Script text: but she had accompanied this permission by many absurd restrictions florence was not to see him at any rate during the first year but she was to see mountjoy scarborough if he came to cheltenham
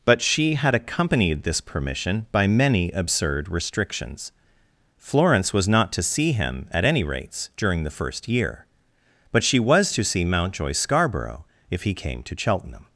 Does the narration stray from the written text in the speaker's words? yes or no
yes